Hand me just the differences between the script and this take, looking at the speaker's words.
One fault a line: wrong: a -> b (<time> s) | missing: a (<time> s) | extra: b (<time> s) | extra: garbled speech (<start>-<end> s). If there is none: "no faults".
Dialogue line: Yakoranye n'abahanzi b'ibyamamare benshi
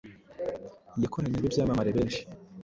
missing: n'abahanzi (1.4 s)